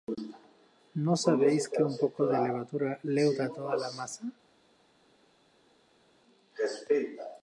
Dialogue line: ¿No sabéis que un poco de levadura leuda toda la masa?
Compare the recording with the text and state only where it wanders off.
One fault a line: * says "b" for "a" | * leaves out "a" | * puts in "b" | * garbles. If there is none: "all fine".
all fine